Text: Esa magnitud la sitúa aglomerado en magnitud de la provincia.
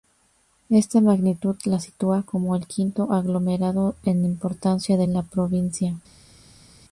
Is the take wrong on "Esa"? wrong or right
wrong